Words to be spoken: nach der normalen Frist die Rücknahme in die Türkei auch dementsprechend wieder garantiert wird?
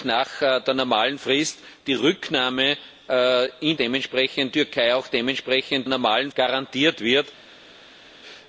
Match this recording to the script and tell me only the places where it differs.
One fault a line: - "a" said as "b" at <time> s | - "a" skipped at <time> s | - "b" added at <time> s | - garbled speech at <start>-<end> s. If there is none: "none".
- "die" said as "dementsprechend" at 3.7 s
- "wieder" said as "normalen" at 5.9 s